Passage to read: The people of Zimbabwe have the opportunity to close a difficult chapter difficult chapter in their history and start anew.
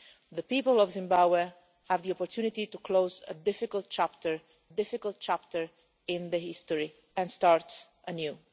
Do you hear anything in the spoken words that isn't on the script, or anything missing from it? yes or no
no